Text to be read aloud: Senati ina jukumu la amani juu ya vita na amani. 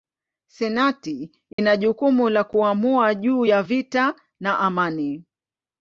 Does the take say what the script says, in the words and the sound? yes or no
no